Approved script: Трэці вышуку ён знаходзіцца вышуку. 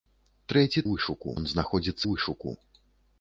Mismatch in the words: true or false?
false